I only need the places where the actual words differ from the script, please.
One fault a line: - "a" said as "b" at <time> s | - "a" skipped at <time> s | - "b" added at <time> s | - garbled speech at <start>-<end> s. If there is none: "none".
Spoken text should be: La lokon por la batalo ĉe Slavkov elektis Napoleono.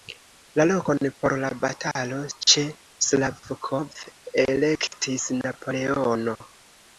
none